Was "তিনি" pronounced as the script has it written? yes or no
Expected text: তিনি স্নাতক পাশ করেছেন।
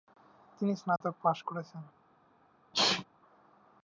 yes